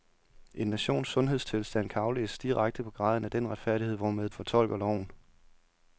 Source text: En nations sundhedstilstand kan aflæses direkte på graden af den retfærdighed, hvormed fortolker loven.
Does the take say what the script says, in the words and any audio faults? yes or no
yes